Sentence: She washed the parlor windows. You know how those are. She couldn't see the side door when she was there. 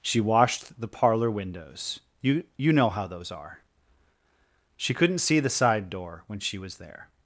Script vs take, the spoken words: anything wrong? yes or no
yes